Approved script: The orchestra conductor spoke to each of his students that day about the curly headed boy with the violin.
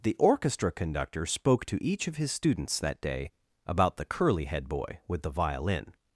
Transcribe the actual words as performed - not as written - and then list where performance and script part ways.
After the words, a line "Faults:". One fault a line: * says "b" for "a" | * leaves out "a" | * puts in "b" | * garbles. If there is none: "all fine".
The orchestra conductor spoke to each of his students that day about the curly head boy with the violin.
Faults:
* says "head" for "headed"